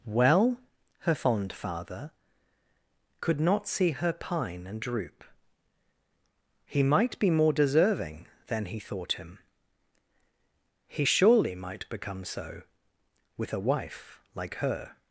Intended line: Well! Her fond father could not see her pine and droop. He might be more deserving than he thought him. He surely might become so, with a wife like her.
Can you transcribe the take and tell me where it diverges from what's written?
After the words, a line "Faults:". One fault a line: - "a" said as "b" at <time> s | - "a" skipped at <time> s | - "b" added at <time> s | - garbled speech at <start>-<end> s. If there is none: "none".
Well! Her fond father could not see her pine and droop. He might be more deserving than he thought him. He surely might become so, with a wife like her.
Faults:
none